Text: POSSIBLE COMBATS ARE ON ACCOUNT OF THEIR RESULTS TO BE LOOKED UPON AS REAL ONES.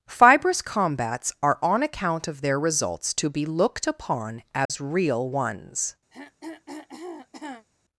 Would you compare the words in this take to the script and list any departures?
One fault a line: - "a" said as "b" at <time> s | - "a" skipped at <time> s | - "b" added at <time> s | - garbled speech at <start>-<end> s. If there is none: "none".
- "POSSIBLE" said as "Fibrous" at 0.1 s